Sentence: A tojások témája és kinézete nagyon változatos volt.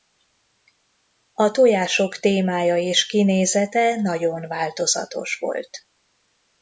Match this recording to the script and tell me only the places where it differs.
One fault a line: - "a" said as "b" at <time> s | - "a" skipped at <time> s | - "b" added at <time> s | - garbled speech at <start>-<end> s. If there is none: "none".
none